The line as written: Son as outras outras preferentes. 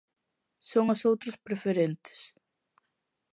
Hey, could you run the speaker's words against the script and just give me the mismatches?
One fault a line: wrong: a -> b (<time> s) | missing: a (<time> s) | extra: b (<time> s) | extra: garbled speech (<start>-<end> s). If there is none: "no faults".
missing: outras (1.4 s)